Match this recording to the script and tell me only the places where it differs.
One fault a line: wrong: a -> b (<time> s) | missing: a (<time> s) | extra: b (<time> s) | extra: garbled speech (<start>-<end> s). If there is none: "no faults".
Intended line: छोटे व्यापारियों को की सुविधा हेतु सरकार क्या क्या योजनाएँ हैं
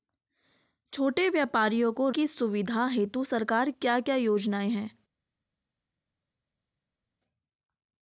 no faults